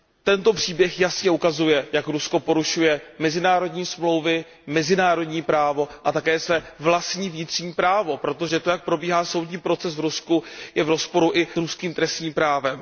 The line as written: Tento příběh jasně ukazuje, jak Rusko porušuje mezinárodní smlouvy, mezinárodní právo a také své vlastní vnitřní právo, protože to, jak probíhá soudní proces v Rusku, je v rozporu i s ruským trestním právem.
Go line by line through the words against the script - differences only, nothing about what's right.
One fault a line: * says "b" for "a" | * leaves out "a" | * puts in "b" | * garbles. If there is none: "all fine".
* leaves out "s"